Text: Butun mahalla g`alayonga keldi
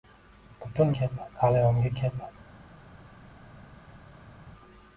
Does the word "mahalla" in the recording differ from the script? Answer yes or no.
yes